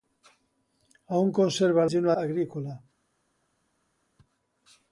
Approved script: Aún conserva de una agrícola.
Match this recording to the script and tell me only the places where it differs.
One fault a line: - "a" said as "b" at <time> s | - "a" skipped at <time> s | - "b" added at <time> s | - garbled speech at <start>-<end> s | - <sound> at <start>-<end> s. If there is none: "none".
none